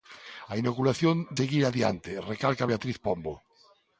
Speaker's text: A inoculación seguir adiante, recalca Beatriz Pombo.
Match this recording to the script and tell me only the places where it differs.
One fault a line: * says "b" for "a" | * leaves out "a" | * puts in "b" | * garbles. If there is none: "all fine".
all fine